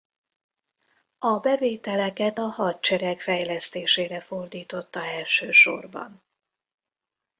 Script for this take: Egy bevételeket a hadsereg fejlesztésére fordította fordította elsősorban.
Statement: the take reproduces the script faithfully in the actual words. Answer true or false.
false